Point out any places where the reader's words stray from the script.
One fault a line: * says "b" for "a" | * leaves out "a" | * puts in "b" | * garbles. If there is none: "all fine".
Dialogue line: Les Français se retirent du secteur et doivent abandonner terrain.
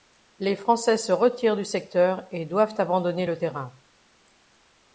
* puts in "le"